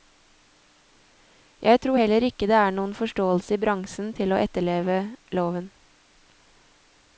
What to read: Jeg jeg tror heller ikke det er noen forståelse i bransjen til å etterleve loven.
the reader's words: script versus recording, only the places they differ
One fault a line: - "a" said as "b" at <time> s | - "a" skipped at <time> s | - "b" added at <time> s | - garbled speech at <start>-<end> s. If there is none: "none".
- "jeg" skipped at 1.8 s